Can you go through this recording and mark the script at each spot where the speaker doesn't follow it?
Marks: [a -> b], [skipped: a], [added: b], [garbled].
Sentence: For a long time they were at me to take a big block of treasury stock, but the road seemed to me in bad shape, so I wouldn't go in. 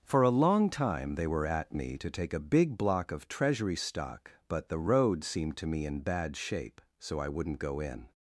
For a long time they were at me to take a big block of treasury stock, but the road seemed to me in bad shape, so I wouldn't go in.